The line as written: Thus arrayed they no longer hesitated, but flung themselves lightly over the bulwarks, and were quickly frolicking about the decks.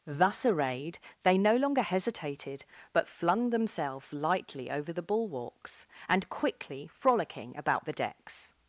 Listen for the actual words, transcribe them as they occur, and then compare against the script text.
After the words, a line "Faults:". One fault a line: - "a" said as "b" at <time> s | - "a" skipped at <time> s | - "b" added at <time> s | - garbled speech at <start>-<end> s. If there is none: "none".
Thus arrayed they no longer hesitated, but flung themselves lightly over the bulwarks, and quickly frolicking about the decks.
Faults:
- "were" skipped at 6.3 s